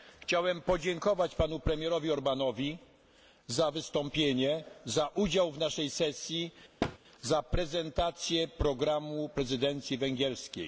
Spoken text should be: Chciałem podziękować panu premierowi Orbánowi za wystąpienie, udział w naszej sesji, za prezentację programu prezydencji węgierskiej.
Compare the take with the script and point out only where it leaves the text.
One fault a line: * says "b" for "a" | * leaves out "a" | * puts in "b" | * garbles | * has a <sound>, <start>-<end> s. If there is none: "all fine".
* puts in "za"
* has a thud, 6.8-7.0 s